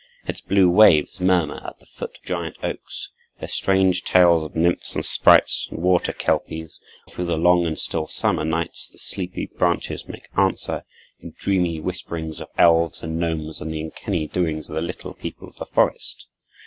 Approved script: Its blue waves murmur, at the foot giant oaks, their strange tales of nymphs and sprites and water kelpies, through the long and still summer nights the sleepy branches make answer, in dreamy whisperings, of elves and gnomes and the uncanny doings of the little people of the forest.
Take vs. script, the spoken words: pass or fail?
pass